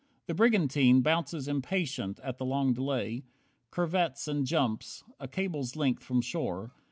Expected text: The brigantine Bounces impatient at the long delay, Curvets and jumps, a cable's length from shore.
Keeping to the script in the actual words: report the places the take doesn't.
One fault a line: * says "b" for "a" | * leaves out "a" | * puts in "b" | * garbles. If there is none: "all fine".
all fine